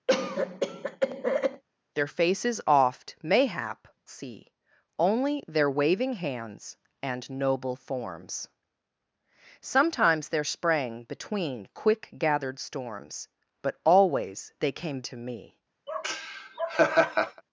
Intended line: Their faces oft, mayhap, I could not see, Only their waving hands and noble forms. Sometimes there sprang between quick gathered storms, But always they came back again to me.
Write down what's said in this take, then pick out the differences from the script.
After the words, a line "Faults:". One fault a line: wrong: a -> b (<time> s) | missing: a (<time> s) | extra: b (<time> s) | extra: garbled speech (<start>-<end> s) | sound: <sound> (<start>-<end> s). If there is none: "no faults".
Their faces oft, mayhap, see, Only their waving hands and noble forms. Sometimes there sprang between quick gathered storms, But always they came to me.
Faults:
sound: cough (0.1-1.6 s)
missing: I could not (3.9 s)
missing: back again (15.0 s)
sound: laugh (15.9-17.4 s)